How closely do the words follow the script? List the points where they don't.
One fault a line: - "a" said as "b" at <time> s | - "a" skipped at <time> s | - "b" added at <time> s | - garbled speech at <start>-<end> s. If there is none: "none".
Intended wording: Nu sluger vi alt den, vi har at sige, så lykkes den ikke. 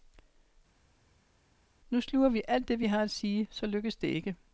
- "den" said as "det" at 2.7 s
- "den" said as "det" at 4.0 s